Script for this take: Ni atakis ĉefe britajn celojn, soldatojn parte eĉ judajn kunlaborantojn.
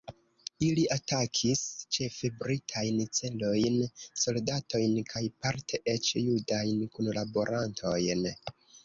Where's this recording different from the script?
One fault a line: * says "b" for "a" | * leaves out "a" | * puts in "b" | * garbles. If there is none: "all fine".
* says "Ili" for "Ni"
* puts in "kaj"